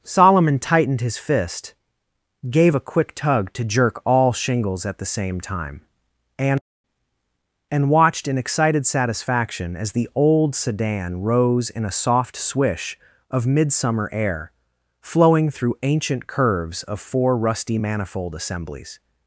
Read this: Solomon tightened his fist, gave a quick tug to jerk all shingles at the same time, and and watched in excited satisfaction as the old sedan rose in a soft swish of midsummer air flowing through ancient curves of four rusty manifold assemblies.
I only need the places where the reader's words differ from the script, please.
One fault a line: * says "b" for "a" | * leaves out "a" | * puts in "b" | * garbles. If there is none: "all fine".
all fine